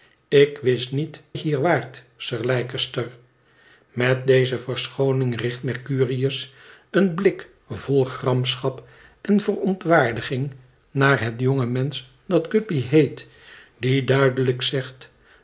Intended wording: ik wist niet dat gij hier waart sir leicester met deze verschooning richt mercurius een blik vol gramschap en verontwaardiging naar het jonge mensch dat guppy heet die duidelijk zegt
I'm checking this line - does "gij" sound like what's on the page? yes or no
no